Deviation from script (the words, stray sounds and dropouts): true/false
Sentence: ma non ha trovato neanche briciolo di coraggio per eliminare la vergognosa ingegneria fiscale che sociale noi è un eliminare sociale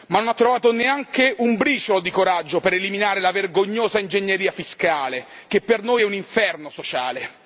true